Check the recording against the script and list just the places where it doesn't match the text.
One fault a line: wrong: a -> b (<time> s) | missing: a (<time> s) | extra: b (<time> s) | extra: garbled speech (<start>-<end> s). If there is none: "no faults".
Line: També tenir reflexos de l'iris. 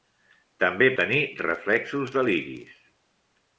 no faults